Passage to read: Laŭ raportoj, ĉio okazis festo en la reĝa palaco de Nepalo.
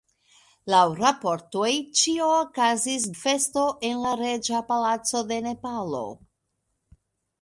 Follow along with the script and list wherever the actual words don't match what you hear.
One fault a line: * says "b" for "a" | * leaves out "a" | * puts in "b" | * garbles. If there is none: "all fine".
all fine